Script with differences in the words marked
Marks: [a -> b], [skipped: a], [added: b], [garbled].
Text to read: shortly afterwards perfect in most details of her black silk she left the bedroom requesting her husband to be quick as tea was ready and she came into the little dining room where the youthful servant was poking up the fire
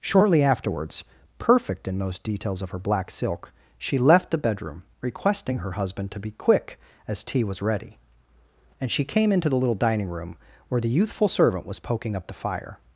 shortly afterwards perfect in most details of her black silk she left the bedroom requesting her husband to be quick as tea was ready and she came into the little dining room where the youthful servant was poking up the fire